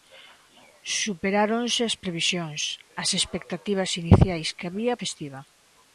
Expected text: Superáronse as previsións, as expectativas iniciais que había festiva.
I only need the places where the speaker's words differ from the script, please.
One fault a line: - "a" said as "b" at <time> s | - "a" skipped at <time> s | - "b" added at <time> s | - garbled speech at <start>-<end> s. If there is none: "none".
none